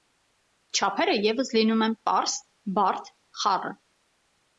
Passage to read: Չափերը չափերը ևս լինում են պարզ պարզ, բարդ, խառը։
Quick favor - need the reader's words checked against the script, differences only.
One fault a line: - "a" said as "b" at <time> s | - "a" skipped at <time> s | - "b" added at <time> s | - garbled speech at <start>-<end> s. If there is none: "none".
- "չափերը" skipped at 1.1 s
- "պարզ" skipped at 2.4 s